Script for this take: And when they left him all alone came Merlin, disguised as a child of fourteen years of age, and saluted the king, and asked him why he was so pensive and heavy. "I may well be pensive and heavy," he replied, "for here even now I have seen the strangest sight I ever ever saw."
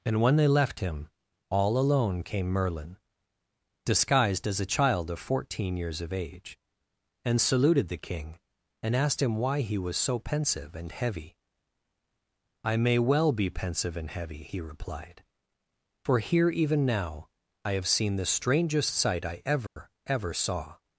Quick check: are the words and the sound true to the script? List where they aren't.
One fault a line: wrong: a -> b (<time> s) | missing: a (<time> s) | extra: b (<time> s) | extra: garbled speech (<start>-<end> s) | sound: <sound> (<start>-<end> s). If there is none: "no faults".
sound: dropout (19.7-19.8 s)